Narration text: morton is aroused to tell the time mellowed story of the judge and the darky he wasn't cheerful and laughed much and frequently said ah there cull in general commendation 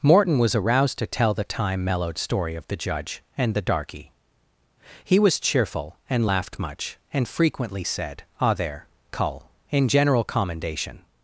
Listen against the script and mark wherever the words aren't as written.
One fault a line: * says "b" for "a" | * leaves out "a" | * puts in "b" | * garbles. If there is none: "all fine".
* says "was" for "is"
* says "was" for "wasn't"